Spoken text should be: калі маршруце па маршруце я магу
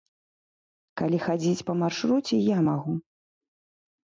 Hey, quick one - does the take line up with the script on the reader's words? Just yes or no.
no